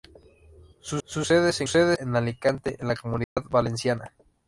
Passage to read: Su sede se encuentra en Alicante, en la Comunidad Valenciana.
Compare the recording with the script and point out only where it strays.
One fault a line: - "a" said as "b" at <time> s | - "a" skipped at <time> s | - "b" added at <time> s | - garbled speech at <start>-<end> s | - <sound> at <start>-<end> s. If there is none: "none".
- "su" added at 1.0 s
- "encuentra" said as "sede" at 1.6 s
- dropout at 3.2-3.4 s